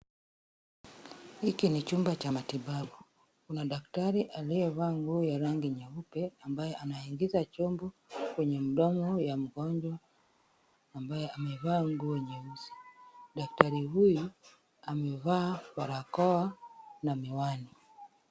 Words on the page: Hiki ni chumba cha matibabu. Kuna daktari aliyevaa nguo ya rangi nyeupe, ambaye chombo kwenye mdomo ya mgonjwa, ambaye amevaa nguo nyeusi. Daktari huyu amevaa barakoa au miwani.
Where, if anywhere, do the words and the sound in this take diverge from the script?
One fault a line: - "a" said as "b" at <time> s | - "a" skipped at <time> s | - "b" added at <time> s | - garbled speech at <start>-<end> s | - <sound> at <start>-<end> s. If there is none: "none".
- "anaingiza" added at 6.7 s
- "au" said as "na" at 17.0 s